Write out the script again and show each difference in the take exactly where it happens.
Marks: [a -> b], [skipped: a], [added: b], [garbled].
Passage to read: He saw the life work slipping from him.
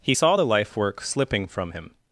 He saw the life work slipping from him.